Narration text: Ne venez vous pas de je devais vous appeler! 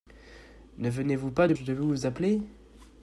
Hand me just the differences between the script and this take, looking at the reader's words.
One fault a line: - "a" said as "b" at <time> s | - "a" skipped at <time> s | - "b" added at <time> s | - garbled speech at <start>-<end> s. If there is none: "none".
none